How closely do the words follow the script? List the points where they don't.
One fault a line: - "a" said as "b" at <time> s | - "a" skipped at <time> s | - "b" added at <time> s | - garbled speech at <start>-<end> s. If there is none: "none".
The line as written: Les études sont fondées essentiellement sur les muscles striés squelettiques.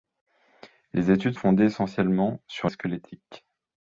- "sont" skipped at 1.4 s
- "les muscles striés" skipped at 2.7 s